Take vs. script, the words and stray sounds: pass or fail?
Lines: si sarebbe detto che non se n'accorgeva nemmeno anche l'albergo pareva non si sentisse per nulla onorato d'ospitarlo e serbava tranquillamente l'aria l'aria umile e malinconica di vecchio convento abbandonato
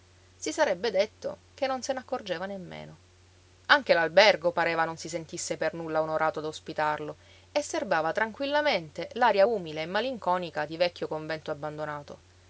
fail